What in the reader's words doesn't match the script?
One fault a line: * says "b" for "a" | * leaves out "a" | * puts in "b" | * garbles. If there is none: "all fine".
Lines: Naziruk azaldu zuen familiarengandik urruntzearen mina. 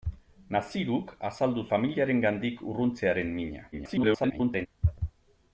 * leaves out "zuen"
* garbles